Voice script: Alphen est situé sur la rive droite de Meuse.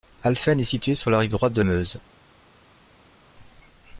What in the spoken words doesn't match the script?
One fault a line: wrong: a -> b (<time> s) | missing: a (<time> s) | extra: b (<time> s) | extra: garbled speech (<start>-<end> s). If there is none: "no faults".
no faults